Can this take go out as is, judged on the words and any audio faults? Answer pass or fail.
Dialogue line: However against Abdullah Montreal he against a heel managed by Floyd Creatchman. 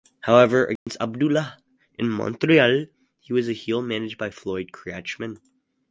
fail